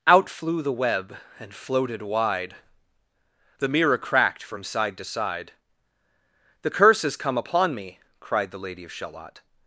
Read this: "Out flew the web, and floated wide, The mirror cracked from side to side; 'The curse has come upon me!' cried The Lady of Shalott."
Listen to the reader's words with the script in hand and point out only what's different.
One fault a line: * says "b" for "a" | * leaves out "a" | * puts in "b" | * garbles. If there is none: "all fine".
all fine